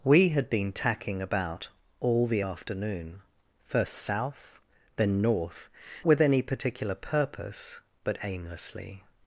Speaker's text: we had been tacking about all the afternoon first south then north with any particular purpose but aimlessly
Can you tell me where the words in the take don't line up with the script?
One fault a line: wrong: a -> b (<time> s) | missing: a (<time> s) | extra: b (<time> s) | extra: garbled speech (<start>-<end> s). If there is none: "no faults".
no faults